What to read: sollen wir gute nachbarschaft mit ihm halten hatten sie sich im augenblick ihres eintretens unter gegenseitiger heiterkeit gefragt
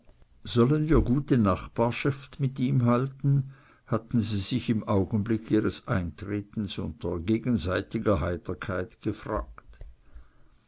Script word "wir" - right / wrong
right